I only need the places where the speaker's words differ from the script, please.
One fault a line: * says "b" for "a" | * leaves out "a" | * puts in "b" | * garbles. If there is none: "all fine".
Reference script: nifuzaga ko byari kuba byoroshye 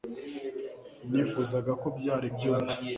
* leaves out "kuba"